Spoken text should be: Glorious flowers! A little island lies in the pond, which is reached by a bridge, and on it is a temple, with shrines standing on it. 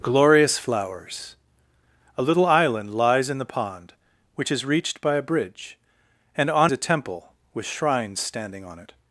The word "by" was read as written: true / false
true